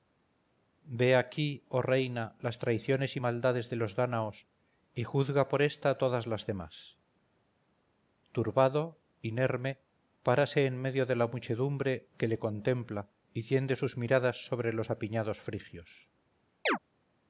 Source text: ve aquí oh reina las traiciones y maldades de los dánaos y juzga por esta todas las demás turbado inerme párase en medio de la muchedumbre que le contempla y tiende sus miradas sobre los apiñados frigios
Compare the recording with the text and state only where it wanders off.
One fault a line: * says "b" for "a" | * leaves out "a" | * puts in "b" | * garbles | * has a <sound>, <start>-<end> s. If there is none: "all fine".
* has a chirp, 16.7-16.8 s